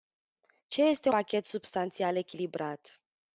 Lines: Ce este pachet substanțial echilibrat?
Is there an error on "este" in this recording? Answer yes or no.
no